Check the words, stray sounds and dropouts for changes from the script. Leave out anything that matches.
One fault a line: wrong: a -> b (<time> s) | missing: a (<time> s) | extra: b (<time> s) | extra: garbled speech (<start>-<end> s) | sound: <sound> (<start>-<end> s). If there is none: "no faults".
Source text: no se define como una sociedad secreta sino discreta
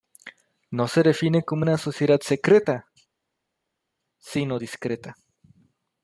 no faults